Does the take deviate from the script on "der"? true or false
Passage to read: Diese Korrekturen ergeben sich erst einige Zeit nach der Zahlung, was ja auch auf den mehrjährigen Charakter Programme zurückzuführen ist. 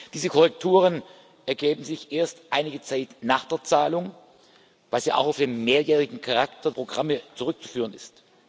false